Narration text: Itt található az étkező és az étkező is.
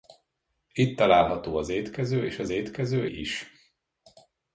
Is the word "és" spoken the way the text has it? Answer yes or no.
yes